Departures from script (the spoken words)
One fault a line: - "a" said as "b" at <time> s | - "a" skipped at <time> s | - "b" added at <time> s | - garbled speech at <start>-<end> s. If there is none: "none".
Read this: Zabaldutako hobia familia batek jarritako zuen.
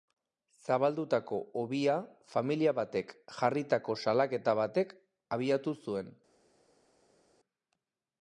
- "salaketa batek abiatu" added at 4.1 s